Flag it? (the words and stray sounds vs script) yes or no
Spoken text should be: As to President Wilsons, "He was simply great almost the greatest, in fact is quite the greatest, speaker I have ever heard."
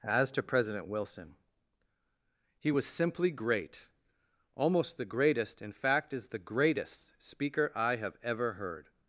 yes